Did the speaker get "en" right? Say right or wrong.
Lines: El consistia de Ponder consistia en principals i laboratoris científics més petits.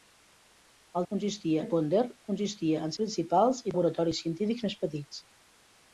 right